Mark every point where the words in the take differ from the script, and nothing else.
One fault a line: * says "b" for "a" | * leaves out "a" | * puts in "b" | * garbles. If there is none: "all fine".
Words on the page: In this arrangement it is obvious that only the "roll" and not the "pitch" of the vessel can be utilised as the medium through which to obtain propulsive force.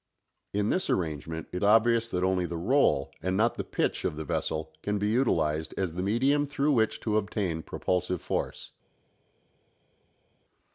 * leaves out "is"